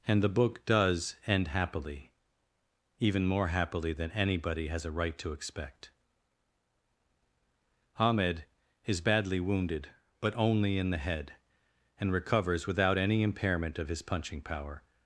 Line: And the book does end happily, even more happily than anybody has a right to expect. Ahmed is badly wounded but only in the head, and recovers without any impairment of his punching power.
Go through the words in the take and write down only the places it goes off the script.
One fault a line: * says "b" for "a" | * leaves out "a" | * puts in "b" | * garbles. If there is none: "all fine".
all fine